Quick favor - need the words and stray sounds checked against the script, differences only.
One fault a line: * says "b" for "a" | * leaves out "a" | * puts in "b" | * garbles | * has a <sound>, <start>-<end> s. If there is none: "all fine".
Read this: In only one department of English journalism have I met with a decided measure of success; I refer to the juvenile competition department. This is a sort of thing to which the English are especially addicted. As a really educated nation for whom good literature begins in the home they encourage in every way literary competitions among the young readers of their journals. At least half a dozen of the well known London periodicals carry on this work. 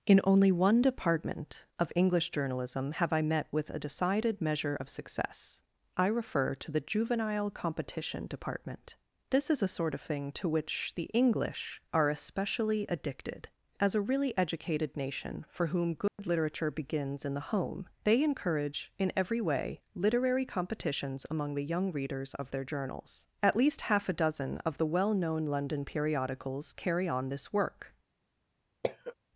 * has a dropout, 16.1-16.2 s
* has a cough, 28.8-29.1 s